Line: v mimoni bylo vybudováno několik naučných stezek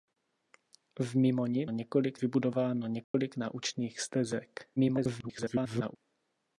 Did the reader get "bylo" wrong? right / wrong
wrong